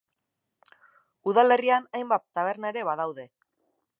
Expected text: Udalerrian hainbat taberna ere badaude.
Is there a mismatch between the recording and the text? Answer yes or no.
no